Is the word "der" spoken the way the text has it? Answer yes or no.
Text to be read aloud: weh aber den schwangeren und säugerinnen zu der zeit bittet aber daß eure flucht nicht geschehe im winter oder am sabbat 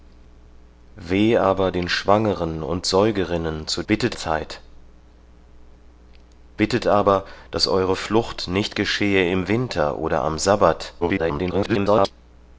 no